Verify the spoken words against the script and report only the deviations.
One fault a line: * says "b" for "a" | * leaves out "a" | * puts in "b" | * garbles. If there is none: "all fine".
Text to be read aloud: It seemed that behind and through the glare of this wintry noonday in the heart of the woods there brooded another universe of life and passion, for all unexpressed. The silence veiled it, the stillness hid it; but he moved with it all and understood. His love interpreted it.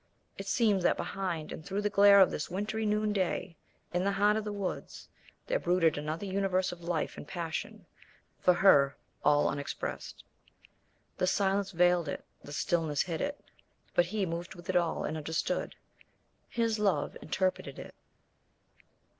* puts in "her"